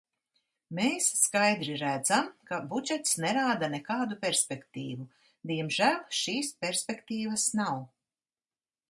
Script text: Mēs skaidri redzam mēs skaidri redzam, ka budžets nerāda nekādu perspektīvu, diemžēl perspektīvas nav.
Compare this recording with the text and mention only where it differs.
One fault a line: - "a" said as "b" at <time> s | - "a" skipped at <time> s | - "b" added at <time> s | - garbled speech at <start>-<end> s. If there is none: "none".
- "mēs skaidri redzam" skipped at 2.3 s
- "šīs" added at 6.2 s